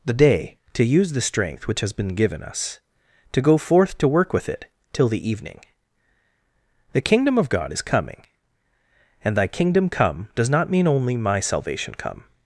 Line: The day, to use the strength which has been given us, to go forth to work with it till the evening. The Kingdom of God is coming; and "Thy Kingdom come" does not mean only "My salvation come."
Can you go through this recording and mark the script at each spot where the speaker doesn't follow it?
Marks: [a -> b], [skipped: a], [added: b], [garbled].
The day, to use the strength which has been given us, to go forth to work with it till the evening. The Kingdom of God is coming; and "Thy Kingdom come" does not mean only "My salvation come."